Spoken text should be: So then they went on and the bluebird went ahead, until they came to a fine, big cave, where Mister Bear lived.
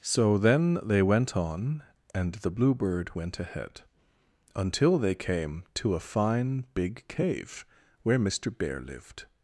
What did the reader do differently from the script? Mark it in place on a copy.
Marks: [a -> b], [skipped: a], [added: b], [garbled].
So then they went on and the bluebird went ahead, until they came to a fine, big cave, where Mister Bear lived.